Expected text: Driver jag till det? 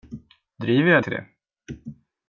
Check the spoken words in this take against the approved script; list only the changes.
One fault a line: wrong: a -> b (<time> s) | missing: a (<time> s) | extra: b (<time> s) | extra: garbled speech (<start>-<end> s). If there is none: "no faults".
no faults